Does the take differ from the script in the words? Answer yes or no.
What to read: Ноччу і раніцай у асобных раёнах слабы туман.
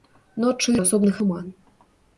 yes